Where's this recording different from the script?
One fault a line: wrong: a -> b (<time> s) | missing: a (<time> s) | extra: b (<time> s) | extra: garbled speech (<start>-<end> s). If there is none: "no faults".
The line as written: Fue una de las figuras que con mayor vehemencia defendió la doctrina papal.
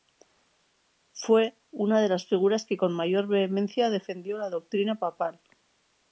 no faults